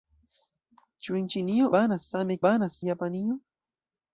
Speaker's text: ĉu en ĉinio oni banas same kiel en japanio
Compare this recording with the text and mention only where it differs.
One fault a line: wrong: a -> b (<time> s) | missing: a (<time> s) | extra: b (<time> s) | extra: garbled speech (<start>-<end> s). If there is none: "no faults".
missing: oni (1.7 s)
wrong: kiel -> banas (2.5 s)